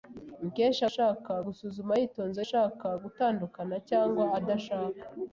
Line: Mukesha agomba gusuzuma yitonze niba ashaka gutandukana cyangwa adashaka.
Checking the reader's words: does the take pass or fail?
fail